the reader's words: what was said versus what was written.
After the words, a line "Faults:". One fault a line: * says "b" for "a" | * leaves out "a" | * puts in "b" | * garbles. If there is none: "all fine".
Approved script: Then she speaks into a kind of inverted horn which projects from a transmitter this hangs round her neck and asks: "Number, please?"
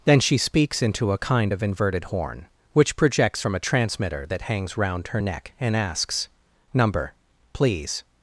Then she speaks into a kind of inverted horn which projects from a transmitter that hangs round her neck and asks: "Number, please?"
Faults:
* says "that" for "this"